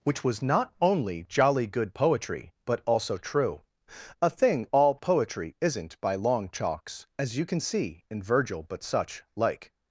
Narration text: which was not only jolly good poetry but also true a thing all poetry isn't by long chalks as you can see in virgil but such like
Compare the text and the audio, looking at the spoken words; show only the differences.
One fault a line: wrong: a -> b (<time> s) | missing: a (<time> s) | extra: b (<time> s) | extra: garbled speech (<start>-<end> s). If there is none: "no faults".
no faults